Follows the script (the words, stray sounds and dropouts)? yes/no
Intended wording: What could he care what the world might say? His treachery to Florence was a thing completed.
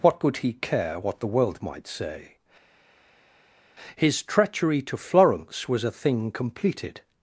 yes